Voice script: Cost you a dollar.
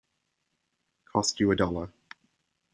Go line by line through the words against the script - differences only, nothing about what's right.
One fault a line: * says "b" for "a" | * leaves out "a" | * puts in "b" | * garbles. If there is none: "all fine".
all fine